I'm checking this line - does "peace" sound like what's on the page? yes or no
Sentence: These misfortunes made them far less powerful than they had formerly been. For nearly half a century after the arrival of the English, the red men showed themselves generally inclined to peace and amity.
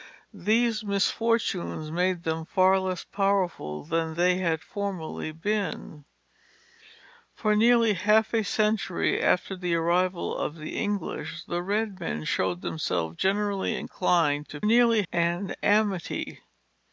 no